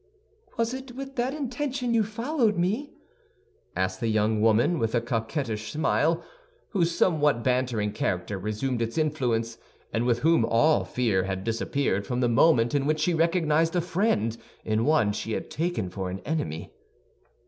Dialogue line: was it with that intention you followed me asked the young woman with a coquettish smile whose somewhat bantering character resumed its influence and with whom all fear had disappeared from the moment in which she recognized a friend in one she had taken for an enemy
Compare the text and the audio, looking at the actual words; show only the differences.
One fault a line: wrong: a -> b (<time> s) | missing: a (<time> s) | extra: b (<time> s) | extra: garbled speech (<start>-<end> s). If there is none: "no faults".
no faults